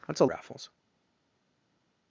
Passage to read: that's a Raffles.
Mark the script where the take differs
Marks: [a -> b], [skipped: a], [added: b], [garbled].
that's a Raffles.